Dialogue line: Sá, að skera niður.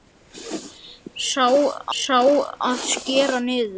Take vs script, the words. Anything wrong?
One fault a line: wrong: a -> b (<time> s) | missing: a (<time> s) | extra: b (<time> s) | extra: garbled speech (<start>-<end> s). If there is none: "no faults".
extra: sá (2.0 s)